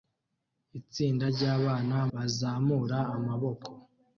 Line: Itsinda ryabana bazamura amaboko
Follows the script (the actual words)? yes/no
yes